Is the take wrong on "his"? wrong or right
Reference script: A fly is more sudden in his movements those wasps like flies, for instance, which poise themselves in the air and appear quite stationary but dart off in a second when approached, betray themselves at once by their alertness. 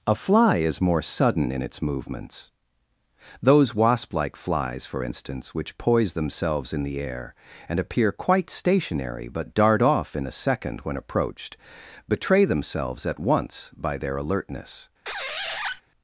wrong